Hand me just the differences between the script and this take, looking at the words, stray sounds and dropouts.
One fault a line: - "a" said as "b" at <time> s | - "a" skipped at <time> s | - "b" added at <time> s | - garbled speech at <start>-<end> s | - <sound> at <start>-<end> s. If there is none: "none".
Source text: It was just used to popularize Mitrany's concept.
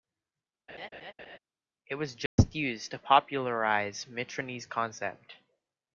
- laugh at 0.7-1.4 s
- dropout at 2.3-2.4 s